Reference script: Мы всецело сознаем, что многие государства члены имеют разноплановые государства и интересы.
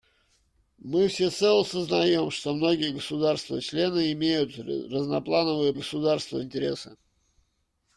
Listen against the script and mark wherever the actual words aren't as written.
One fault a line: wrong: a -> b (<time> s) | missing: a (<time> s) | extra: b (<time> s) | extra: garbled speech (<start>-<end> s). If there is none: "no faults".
no faults